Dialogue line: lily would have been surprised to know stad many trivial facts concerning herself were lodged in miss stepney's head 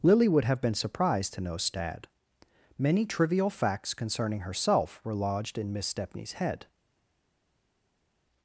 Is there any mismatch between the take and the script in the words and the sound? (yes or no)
no